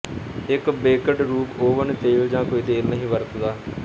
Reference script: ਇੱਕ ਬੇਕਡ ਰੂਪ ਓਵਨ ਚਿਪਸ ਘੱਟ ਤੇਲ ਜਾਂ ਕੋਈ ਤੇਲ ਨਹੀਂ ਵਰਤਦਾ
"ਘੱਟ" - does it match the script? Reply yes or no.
no